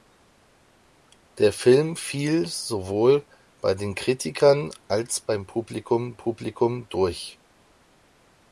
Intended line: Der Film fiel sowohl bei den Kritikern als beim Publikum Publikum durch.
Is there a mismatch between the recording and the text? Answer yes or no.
no